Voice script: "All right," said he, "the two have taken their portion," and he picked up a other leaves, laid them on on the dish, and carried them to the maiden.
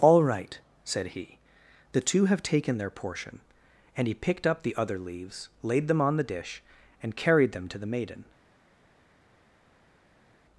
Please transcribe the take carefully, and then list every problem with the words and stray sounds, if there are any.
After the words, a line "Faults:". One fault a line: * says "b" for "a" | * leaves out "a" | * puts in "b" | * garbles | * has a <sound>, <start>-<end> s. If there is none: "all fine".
"All right," said he, "the two have taken their portion," and he picked up the other leaves, laid them on the dish, and carried them to the maiden.
Faults:
* says "the" for "a"
* leaves out "on"